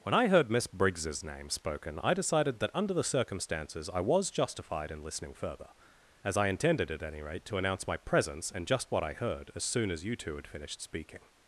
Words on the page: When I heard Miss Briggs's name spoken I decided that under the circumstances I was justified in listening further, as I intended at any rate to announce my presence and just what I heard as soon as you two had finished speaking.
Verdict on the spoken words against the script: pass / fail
pass